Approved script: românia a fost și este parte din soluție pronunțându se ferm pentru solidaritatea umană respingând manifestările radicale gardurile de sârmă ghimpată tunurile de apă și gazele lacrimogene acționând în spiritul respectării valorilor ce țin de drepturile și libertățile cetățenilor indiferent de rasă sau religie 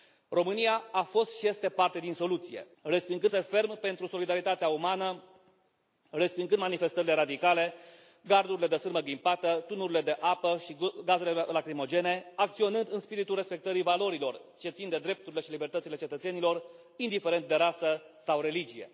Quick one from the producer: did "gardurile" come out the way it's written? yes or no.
yes